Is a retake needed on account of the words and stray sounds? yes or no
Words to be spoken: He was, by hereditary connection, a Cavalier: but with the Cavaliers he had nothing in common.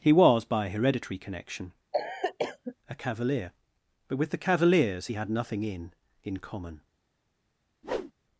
yes